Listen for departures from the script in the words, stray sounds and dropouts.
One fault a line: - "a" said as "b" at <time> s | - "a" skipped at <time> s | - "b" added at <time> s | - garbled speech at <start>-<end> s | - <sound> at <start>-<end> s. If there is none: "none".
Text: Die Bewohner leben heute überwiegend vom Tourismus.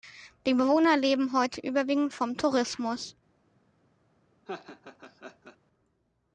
- laugh at 4.5-5.6 s